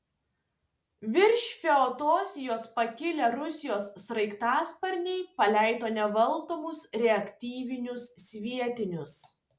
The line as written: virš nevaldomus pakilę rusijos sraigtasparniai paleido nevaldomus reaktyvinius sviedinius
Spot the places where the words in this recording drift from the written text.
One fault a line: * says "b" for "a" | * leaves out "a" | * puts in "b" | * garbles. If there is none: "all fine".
* says "feodosijos" for "nevaldomus"